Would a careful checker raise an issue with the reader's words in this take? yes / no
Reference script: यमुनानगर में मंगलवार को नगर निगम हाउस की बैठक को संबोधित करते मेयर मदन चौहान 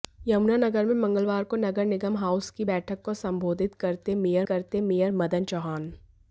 yes